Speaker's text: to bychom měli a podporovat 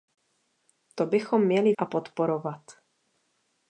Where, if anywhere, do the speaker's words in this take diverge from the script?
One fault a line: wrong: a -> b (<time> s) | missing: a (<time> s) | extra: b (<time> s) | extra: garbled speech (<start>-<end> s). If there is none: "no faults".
no faults